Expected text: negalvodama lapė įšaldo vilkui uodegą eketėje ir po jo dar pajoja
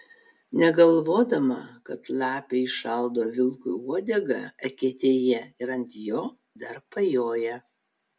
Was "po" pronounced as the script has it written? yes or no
no